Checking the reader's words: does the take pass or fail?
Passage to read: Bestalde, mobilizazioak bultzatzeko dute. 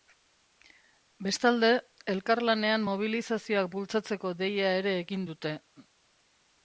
fail